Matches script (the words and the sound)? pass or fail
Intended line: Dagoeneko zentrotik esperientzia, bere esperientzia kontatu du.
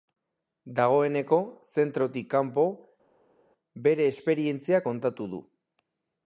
fail